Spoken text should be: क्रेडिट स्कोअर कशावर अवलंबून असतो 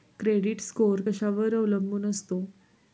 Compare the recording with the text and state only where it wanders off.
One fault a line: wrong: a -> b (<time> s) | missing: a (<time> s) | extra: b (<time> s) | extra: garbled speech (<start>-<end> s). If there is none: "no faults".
no faults